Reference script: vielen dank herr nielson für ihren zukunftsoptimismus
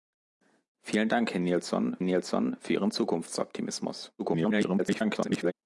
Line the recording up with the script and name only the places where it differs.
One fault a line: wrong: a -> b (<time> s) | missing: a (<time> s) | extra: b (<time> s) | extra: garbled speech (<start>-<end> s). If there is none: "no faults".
extra: nielson (2.0 s)
extra: garbled speech (4.2-5.5 s)